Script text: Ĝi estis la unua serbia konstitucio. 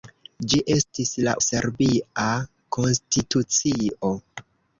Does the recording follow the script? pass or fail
fail